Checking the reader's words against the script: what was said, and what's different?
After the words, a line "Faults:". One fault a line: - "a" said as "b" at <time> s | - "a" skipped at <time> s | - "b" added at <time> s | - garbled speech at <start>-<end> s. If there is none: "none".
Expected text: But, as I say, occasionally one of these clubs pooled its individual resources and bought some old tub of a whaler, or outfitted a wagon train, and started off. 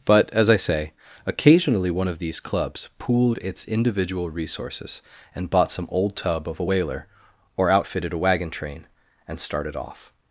But, as I say, occasionally one of these clubs pooled its individual resources and bought some old tub of a whaler, or outfitted a wagon train, and started off.
Faults:
none